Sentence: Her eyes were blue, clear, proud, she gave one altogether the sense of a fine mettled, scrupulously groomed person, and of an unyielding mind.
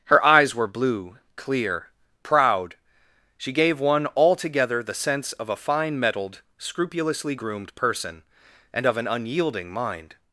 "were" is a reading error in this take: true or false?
false